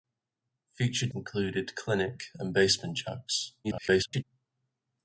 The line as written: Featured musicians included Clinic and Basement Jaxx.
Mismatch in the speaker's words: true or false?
true